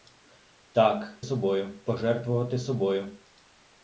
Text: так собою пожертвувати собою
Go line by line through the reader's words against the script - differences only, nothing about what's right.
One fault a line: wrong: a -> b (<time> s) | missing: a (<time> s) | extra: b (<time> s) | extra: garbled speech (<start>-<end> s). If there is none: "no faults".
no faults